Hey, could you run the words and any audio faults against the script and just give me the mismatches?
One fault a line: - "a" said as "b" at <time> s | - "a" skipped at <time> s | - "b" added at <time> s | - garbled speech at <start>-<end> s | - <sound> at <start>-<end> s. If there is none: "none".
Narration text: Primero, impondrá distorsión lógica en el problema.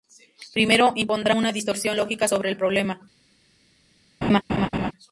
- "una" added at 1.3 s
- "en" said as "sobre" at 2.3 s
- laugh at 4.2-4.9 s